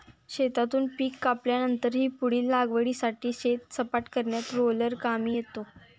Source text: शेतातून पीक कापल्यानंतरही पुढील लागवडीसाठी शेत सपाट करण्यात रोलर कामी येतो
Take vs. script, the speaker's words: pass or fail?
pass